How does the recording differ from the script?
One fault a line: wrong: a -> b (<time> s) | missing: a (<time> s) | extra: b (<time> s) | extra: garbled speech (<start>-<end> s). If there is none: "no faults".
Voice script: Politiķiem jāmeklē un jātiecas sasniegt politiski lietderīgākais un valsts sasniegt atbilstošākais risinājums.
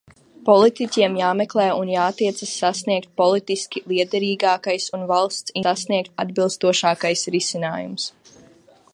no faults